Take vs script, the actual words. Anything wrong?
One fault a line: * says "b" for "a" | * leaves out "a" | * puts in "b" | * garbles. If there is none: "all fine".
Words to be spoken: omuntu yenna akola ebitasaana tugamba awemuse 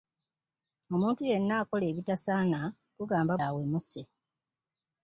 all fine